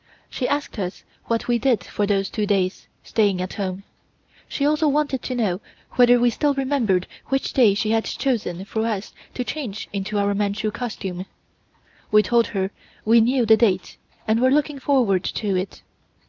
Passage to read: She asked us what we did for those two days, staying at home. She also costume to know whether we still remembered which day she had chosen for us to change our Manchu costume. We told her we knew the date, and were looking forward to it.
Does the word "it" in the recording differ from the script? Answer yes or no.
no